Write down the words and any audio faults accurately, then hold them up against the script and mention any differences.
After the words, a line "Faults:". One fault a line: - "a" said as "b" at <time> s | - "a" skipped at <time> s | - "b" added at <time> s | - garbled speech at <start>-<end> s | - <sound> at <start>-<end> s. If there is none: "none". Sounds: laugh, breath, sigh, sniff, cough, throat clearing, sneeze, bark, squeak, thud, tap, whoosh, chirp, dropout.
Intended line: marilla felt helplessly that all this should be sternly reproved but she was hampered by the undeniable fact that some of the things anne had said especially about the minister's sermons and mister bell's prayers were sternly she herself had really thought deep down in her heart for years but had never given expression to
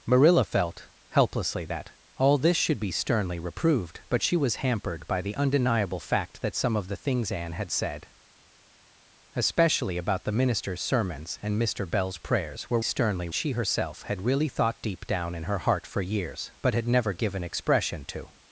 marilla felt helplessly that all this should be sternly reproved but she was hampered by the undeniable fact that some of the things anne had said especially about the minister's sermons and mister bell's prayers were sternly she herself had really thought deep down in her heart for years but had never given expression to
Faults:
none